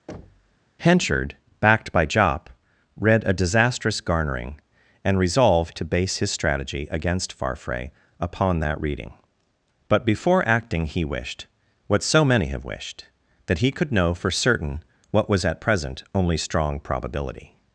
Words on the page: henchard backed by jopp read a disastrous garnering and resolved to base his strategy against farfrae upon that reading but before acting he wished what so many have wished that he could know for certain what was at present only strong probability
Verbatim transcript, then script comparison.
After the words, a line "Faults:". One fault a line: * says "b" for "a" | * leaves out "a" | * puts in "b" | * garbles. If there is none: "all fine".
henchard backed by jopp read a disastrous garnering and resolved to base his strategy against farfrae upon that reading but before acting he wished what so many have wished that he could know for certain what was at present only strong probability
Faults:
all fine